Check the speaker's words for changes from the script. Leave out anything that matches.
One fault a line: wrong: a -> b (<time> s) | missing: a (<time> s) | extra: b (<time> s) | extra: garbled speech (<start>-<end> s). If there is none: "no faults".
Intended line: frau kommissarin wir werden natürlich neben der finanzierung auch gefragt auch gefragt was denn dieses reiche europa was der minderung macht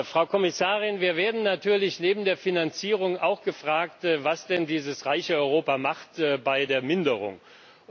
missing: auch gefragt (4.0 s)
wrong: was -> bei (6.4 s)